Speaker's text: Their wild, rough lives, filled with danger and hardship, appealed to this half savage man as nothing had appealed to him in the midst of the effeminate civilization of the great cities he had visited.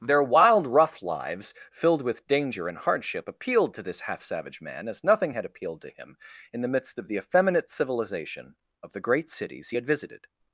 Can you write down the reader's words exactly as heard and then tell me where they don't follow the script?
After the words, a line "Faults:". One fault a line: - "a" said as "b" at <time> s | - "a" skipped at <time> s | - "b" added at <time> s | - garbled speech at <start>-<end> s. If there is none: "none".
Their wild, rough lives, filled with danger and hardship, appealed to this half savage man as nothing had appealed to him in the midst of the effeminate civilization of the great cities he had visited.
Faults:
none